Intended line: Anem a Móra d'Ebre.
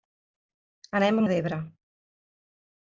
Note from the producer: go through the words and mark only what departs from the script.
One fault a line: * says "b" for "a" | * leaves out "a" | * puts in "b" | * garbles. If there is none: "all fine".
* leaves out "Móra"